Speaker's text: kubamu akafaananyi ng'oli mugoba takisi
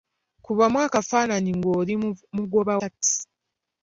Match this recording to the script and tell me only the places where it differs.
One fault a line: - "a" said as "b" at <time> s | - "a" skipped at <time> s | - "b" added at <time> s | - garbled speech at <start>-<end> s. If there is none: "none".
none